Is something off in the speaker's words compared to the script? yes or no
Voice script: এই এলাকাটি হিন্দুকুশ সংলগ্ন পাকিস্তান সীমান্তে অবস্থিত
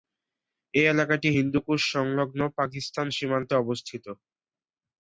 no